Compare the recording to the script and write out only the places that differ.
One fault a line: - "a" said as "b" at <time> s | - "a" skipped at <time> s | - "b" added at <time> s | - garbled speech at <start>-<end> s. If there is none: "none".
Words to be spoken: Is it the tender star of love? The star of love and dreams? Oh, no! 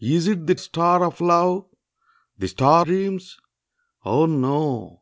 - "tender" skipped at 0.6 s
- "of love and" skipped at 2.9 s